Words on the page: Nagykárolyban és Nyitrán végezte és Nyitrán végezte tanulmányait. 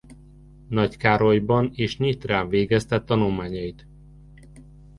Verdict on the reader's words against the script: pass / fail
fail